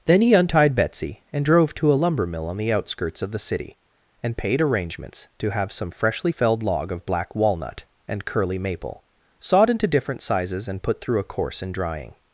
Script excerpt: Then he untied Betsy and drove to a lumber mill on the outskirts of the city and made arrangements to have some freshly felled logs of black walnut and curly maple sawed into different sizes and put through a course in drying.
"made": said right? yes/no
no